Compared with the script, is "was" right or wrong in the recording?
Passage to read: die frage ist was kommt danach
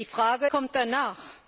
wrong